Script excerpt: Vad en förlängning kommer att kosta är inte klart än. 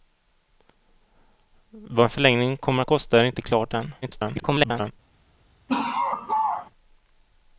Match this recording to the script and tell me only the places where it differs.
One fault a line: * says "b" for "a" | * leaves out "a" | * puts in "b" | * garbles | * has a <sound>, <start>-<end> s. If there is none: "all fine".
* garbles
* has a laugh, 5.7-6.7 s